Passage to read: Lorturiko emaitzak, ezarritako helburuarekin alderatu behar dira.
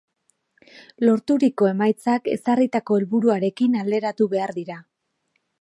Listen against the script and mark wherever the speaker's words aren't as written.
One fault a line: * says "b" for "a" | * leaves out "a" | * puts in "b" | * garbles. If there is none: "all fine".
all fine